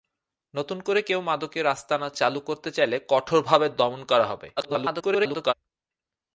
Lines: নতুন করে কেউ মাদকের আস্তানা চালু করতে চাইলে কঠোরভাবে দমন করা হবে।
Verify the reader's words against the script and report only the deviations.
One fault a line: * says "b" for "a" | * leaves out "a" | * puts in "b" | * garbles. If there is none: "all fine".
* garbles